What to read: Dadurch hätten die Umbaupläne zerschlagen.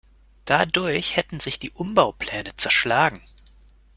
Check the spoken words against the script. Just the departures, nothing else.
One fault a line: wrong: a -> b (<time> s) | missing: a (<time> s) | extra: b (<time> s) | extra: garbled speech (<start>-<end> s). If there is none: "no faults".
extra: sich (1.4 s)